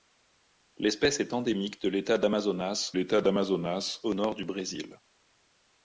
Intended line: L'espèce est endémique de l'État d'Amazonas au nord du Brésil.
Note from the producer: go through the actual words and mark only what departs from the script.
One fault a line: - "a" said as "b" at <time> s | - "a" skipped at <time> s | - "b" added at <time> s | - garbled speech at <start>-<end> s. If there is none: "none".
- "l'État d'Amazonas" added at 2.9 s